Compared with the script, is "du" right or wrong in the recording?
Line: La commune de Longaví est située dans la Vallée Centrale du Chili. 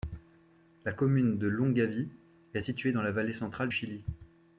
wrong